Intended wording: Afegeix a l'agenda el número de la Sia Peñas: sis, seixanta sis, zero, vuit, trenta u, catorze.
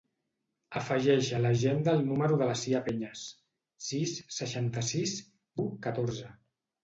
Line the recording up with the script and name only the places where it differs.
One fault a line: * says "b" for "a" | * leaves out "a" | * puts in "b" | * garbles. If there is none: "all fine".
* leaves out "zero vuit trenta"